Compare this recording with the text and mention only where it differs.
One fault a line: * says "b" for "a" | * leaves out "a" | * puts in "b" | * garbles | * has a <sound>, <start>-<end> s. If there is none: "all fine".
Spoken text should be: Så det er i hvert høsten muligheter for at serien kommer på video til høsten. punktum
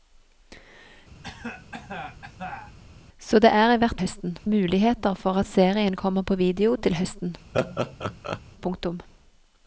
* has a cough, 1.2-2.8 s
* has a laugh, 7.5-8.4 s